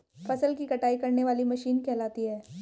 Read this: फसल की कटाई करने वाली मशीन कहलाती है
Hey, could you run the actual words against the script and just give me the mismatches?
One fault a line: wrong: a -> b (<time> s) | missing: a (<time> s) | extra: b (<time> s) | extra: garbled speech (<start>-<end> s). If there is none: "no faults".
no faults